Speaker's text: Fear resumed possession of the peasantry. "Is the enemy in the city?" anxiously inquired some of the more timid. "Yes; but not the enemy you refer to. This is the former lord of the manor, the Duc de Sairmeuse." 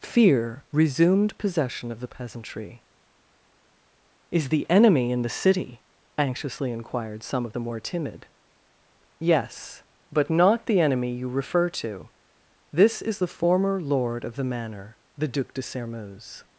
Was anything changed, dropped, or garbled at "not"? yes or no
no